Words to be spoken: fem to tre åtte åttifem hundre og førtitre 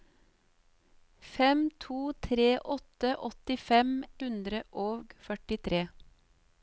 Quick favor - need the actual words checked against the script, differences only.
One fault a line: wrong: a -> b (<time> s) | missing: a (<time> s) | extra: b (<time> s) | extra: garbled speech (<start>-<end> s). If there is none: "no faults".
no faults